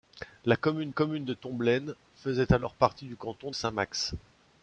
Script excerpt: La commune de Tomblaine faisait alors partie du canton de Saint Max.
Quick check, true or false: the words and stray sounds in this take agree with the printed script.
false